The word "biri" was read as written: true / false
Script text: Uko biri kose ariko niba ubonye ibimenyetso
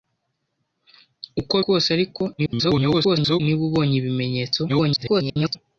false